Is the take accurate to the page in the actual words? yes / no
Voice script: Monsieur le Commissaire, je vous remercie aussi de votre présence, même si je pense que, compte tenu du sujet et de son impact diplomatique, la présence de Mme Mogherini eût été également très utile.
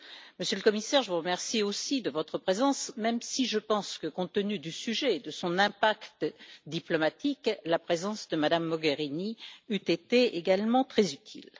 yes